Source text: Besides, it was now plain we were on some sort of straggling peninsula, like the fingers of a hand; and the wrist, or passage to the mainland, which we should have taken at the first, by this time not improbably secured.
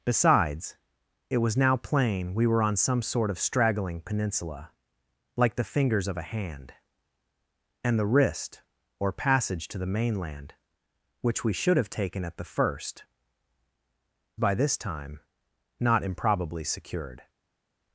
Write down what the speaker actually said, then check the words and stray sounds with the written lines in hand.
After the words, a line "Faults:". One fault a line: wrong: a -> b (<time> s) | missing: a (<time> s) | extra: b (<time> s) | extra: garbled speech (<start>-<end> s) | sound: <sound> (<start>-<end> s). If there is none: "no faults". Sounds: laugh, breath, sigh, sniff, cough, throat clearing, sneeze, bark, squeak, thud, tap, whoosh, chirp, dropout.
Besides, it was now plain we were on some sort of straggling peninsula, like the fingers of a hand; and the wrist, or passage to the mainland, which we should have taken at the first, by this time not improbably secured.
Faults:
no faults